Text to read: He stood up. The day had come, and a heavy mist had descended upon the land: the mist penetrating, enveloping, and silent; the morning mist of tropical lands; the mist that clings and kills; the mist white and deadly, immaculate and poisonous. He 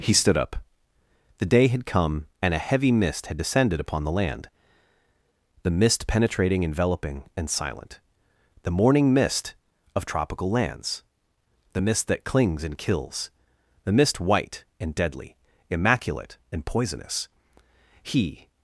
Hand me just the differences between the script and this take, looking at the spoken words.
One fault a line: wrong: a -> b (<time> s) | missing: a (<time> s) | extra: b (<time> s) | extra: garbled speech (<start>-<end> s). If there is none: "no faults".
no faults